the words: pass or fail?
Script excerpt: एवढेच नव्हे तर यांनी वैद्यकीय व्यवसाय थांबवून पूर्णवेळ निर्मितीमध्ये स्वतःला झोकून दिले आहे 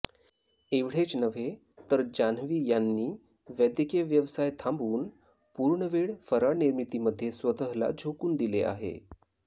fail